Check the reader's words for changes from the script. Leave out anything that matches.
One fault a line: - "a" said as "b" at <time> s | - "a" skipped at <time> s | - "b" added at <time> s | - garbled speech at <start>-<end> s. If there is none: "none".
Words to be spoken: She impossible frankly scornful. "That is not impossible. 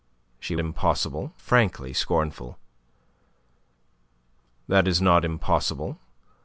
none